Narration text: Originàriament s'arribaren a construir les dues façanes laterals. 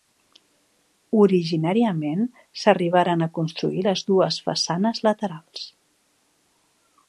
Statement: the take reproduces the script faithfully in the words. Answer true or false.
true